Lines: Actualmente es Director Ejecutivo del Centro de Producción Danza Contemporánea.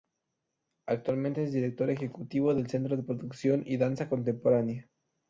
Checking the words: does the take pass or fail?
fail